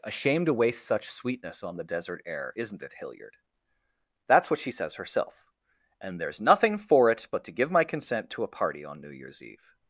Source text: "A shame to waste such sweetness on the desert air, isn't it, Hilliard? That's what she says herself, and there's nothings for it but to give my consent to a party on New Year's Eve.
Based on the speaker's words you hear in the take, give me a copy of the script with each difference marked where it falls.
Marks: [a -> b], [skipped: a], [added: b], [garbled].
"A shame to waste such sweetness on the desert air, isn't it, Hilliard? That's what she says herself, and there's [nothings -> nothing] for it but to give my consent to a party on New Year's Eve.